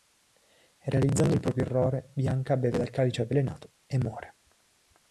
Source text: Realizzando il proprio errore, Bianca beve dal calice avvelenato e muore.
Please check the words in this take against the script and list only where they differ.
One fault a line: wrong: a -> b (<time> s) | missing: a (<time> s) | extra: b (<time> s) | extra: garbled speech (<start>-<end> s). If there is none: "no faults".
no faults